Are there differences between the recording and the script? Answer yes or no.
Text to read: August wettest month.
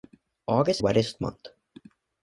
no